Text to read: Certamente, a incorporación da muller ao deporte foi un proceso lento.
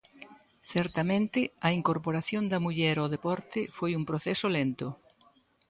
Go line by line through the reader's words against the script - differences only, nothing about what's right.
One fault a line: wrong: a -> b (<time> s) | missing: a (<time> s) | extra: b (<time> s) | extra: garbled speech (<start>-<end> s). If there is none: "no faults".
no faults